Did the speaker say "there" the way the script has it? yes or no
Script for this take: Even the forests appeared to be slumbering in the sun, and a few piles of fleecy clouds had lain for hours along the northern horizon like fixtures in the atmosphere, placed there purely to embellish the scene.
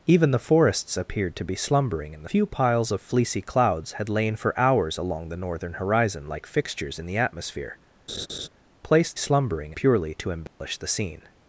no